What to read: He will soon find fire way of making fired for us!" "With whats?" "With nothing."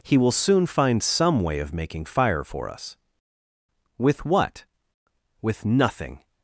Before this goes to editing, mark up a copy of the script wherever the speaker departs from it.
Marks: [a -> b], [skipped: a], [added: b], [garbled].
He will soon find [fire -> some] way of making [fired -> fire] for us!" "With [whats?" -> what] "With nothing."